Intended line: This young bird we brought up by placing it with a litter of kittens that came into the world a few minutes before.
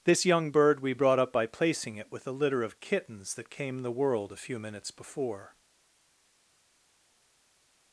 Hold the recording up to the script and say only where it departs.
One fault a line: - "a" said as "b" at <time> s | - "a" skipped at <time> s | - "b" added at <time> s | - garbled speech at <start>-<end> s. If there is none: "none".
- "into" skipped at 3.8 s